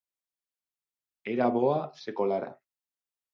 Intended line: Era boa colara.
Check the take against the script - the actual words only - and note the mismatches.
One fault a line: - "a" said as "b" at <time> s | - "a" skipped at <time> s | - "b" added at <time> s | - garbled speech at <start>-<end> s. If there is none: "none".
- "se" added at 1.9 s